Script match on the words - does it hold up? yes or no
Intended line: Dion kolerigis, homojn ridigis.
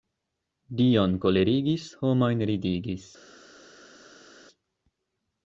yes